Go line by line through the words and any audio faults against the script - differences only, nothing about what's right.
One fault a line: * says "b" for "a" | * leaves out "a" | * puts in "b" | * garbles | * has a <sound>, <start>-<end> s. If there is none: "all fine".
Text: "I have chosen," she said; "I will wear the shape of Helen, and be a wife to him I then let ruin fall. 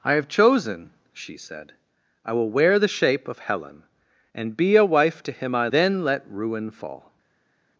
all fine